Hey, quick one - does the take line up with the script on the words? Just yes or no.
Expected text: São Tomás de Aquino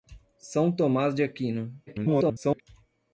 no